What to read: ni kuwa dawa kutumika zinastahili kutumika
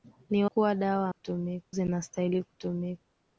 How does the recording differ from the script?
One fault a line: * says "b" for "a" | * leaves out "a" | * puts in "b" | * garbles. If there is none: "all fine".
all fine